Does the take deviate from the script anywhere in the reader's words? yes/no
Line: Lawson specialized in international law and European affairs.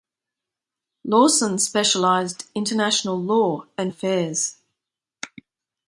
yes